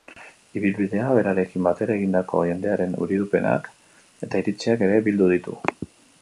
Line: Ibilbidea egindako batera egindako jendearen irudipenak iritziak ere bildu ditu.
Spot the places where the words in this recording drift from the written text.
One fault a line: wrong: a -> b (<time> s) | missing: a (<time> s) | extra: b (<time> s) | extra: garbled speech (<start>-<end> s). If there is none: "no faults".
wrong: egindako -> berarekin (1.2 s)
extra: eta (4.3 s)